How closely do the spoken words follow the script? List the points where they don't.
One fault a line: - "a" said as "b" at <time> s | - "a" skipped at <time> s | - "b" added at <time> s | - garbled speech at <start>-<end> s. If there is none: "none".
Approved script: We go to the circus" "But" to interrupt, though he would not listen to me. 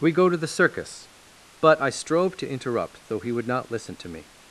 - "I strove" added at 1.8 s